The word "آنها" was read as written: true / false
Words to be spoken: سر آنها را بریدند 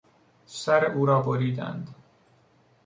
false